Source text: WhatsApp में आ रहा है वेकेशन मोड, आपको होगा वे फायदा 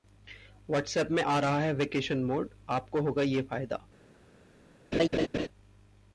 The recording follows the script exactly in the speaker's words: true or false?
false